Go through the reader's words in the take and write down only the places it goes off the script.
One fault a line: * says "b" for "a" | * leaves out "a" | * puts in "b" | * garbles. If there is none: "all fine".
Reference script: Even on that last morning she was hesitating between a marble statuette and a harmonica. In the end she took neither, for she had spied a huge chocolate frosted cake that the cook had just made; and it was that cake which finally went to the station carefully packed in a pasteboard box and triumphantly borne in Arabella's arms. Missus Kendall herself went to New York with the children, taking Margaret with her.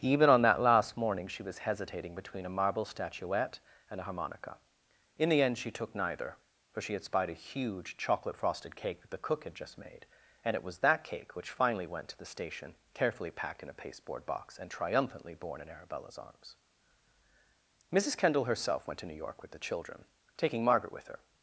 all fine